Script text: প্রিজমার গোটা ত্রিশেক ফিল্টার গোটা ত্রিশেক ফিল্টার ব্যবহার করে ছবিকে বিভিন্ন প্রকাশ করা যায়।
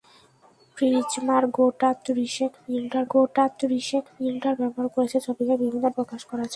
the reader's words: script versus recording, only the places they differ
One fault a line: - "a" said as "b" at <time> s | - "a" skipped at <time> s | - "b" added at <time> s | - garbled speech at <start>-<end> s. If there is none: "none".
none